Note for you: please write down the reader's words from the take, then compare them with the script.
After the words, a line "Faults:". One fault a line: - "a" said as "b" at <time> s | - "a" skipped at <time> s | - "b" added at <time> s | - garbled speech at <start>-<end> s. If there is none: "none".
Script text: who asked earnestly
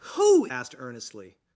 who asked earnestly
Faults:
none